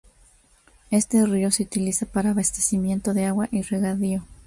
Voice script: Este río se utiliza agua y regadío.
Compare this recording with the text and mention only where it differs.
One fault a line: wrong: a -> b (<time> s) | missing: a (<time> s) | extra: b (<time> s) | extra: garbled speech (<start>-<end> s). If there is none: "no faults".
extra: para abastecimiento de (2.1 s)